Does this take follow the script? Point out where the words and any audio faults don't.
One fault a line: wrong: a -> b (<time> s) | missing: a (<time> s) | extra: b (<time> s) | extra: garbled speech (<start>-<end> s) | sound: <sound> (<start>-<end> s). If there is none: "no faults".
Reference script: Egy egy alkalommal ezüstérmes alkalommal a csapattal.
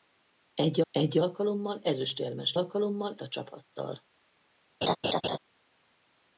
sound: laugh (4.8-5.4 s)